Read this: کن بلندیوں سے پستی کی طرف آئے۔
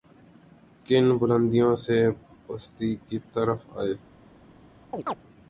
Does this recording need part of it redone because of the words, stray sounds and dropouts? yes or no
yes